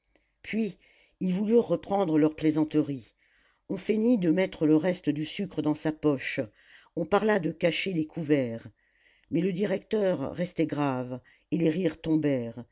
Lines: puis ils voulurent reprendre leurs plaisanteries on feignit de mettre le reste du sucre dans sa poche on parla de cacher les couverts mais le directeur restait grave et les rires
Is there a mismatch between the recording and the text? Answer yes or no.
no